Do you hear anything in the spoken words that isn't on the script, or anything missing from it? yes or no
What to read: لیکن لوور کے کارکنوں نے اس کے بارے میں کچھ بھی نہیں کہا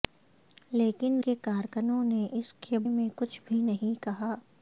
yes